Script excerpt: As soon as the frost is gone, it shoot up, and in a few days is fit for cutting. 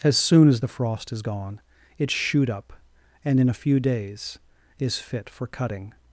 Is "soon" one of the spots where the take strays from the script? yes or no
no